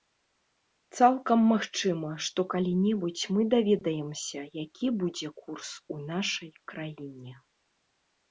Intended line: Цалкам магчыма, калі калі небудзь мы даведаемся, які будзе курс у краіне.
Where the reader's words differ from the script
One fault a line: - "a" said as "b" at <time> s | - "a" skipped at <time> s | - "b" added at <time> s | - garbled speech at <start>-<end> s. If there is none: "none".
- "калі" said as "што" at 2.3 s
- "нашай" added at 6.1 s